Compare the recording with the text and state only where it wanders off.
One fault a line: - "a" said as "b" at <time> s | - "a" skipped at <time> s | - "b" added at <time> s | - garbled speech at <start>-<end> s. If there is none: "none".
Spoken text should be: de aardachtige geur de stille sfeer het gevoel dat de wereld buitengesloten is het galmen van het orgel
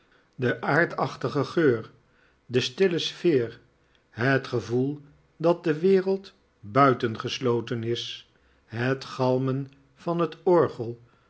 none